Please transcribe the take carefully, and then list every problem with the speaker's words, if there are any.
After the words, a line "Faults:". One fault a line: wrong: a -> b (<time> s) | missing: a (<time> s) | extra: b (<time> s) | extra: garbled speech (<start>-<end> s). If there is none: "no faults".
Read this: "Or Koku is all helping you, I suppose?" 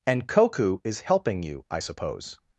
"And Koku is helping you, I suppose?"
Faults:
wrong: Or -> And (0.1 s)
missing: all (1.0 s)